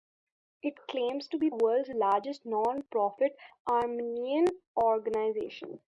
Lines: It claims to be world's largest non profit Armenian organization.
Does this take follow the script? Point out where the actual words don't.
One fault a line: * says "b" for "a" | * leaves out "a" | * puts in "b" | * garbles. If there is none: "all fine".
all fine